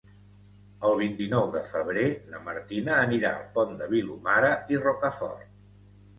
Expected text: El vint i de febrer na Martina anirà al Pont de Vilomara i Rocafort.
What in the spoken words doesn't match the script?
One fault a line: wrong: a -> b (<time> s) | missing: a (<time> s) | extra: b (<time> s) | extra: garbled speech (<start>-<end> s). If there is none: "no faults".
extra: nou (1.3 s)